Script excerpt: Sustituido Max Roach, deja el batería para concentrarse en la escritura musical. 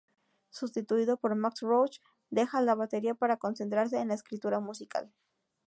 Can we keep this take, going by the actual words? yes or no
no